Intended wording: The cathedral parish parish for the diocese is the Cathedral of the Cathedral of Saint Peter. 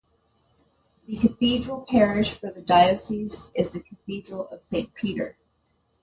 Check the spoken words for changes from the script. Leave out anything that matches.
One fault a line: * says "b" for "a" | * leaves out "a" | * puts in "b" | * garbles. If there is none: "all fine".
* leaves out "parish"
* leaves out "the Cathedral of"